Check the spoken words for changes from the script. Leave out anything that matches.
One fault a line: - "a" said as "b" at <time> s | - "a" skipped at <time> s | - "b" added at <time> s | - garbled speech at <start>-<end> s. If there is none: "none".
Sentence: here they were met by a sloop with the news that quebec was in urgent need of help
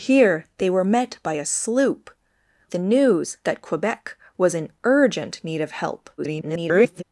- "with" skipped at 2.1 s
- garbled speech at 6.2-7.0 s